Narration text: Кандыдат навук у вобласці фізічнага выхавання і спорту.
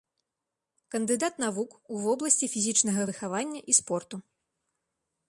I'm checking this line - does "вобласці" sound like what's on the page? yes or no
yes